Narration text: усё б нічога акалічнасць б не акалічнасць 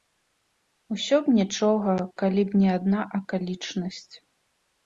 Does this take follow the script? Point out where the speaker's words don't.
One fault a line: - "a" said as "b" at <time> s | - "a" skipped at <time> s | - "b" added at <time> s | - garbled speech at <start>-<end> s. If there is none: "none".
- "акалічнасць" said as "калі" at 2.2 s
- "адна" added at 2.8 s